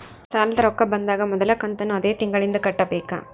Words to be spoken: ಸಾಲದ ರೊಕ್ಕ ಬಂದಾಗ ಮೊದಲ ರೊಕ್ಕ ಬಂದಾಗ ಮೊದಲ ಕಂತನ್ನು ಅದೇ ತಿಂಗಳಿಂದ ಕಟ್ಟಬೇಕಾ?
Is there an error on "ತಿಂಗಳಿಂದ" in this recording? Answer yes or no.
no